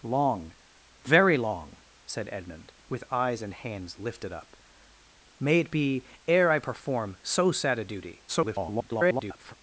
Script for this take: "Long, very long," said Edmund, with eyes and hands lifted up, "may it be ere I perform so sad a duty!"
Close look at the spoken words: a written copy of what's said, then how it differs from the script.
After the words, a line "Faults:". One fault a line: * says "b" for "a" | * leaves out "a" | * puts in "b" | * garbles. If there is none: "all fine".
"Long, very long," said Edmund, with eyes and hands lifted up, "may it be ere I perform so sad a duty!" [garbled]
Faults:
* garbles